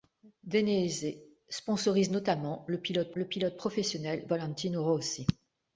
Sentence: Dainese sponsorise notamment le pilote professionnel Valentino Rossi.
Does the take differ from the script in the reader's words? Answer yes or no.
yes